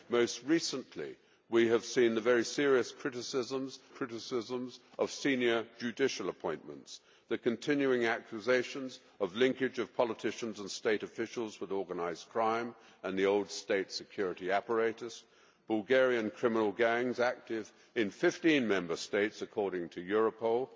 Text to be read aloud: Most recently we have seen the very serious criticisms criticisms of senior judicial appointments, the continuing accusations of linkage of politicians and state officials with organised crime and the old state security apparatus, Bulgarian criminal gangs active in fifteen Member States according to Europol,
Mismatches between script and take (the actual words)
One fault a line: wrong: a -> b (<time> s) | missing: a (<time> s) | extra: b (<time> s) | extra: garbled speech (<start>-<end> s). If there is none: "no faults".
no faults